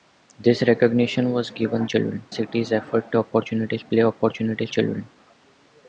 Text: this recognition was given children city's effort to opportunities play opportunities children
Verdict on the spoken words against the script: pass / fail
pass